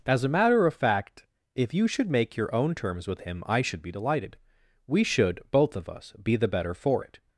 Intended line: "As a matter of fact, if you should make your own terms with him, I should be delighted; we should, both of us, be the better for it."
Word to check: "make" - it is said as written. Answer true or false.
true